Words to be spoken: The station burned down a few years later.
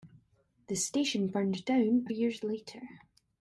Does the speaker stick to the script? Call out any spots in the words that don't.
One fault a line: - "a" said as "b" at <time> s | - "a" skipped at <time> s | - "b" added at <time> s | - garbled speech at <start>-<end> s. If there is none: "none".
- "few" skipped at 2.1 s